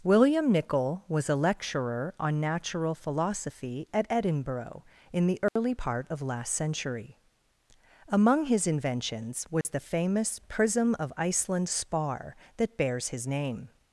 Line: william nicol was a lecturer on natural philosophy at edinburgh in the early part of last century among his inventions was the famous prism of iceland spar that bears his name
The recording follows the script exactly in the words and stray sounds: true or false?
false